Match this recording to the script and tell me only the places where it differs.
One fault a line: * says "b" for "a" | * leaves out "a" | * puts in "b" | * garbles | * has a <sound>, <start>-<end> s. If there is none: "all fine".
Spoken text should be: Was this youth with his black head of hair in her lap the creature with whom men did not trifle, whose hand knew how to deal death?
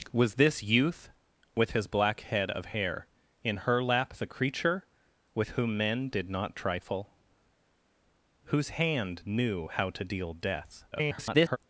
* garbles